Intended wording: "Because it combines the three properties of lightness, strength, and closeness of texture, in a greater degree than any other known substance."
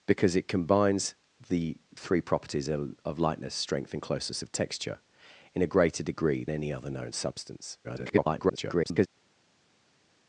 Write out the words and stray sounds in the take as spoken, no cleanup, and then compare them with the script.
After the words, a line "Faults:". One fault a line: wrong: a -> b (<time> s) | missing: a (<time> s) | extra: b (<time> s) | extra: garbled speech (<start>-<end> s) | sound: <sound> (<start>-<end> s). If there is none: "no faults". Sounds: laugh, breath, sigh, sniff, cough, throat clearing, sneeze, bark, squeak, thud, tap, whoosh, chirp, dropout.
"Because it combines the three properties of lightness, strength, and closeness of texture, in a greater degree any other known substance." [garbled]
Faults:
missing: than (6.5 s)
extra: garbled speech (7.8-9.1 s)